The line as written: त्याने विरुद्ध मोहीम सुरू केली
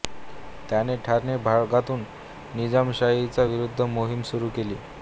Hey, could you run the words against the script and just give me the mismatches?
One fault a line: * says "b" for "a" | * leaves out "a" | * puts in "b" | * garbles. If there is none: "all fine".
* puts in "ठाणे भागातून निजामशाहीच्या"